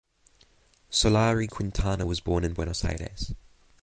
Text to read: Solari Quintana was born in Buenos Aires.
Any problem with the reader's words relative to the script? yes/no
no